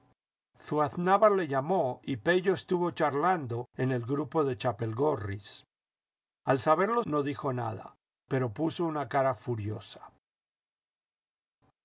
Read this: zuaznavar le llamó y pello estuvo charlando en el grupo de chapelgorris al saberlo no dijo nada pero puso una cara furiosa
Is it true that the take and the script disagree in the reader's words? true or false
false